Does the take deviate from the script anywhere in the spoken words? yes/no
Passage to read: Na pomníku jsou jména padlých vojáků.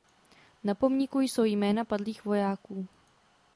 no